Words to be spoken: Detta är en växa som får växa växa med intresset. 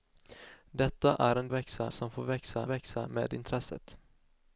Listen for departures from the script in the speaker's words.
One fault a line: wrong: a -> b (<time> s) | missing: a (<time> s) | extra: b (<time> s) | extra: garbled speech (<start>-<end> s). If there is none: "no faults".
no faults